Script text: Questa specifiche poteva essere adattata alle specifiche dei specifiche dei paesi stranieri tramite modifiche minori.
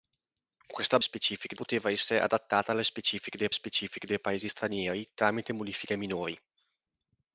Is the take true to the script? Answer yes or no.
yes